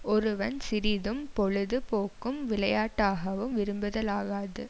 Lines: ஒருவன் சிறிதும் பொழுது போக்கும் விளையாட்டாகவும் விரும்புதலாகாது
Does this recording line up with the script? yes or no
yes